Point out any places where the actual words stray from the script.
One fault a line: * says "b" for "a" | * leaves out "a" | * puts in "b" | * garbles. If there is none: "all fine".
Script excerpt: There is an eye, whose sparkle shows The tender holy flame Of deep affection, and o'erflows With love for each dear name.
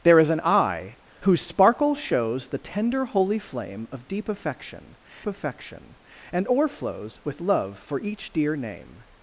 * puts in "affection"